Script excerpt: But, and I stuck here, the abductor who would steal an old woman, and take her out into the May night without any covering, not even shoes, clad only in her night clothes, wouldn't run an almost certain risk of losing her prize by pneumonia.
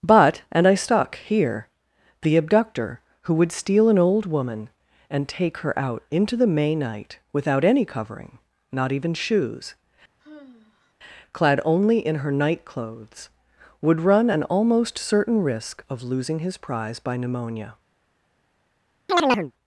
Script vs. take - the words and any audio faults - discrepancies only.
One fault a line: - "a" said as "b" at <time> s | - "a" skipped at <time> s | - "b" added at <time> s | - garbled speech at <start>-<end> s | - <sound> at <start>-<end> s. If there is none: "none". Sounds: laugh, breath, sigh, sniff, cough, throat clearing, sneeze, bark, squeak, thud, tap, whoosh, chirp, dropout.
- sigh at 10.2-10.9 s
- "wouldn't" said as "would" at 13.8 s
- "her" said as "his" at 16.4 s
- chirp at 19.1-19.5 s